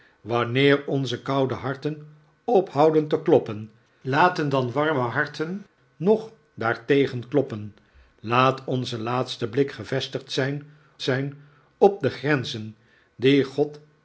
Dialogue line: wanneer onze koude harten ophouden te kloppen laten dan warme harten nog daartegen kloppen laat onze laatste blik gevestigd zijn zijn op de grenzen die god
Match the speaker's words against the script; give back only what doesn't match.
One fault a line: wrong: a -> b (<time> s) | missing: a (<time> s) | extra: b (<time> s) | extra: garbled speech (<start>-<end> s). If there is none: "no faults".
no faults